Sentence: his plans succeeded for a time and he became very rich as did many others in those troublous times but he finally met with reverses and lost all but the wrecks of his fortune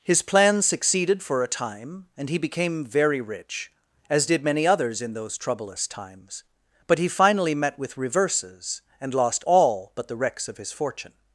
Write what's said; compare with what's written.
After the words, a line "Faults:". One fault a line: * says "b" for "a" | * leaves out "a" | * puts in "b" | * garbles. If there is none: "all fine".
his plans succeeded for a time and he became very rich as did many others in those troublous times but he finally met with reverses and lost all but the wrecks of his fortune
Faults:
all fine